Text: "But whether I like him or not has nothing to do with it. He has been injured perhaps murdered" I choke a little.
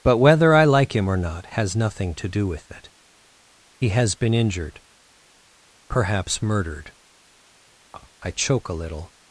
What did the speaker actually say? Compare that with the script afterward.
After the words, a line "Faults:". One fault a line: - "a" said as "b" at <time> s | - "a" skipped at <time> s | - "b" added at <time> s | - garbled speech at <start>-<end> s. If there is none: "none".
"But whether I like him or not has nothing to do with it. He has been injured perhaps murdered" I choke a little.
Faults:
none